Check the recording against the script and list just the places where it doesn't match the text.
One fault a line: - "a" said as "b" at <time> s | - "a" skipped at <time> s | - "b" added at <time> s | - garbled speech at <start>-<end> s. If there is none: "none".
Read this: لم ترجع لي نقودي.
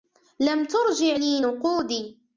none